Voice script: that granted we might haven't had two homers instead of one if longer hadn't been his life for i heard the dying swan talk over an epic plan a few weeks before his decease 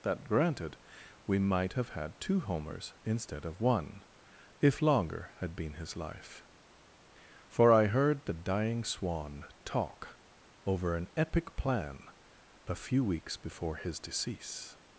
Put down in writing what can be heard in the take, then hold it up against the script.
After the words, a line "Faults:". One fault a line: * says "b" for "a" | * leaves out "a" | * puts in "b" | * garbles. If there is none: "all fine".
that granted we might have had two homers instead of one if longer had been his life for i heard the dying swan talk over an epic plan a few weeks before his decease
Faults:
* says "have" for "haven't"
* says "had" for "hadn't"